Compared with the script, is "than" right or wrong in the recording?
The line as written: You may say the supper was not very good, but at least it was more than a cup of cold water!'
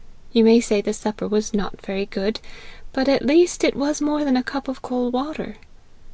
right